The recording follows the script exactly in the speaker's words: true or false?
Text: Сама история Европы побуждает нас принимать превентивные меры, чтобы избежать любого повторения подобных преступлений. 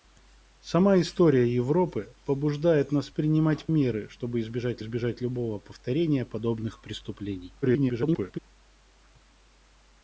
false